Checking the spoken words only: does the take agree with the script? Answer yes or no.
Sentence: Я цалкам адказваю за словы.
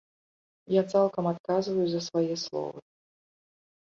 no